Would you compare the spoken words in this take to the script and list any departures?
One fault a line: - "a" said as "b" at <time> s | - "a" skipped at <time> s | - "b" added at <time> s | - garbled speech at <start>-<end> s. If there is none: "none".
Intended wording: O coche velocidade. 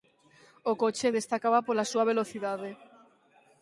- "destacaba pola súa" added at 1.2 s